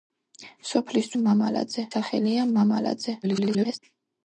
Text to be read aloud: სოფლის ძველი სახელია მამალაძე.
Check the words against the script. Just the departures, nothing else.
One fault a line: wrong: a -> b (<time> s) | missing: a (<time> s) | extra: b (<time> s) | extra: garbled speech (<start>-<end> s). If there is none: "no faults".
wrong: ძველი -> მამალაძე (1.2 s)
extra: garbled speech (3.2-3.8 s)